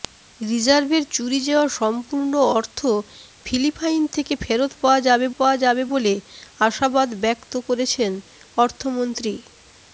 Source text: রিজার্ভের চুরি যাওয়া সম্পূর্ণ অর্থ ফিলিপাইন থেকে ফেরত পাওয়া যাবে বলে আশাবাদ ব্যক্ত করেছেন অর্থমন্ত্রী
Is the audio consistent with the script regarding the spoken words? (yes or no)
no